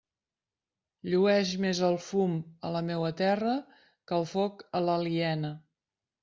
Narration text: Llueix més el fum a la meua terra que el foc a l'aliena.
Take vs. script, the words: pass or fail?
pass